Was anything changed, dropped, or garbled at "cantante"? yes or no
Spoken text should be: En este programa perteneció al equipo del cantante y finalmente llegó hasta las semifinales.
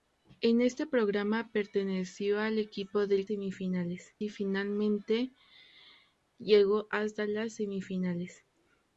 yes